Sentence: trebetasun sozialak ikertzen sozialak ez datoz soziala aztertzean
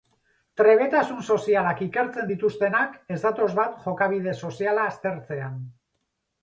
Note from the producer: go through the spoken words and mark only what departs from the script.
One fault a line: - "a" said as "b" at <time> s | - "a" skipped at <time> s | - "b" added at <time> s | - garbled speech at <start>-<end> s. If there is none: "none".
- "sozialak" said as "dituztenak" at 2.3 s
- "bat jokabide" added at 3.6 s